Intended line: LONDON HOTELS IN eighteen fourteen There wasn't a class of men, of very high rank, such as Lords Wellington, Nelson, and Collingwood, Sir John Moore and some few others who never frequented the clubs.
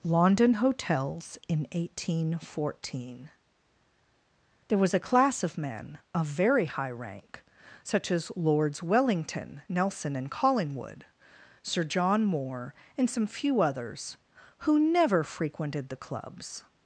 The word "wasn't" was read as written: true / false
false